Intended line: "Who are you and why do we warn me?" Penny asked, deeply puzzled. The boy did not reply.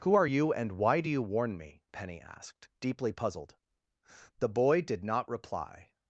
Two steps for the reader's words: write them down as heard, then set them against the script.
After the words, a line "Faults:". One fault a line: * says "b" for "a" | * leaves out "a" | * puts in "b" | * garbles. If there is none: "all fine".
"Who are you and why do you warn me?" Penny asked, deeply puzzled. The boy did not reply.
Faults:
* says "you" for "we"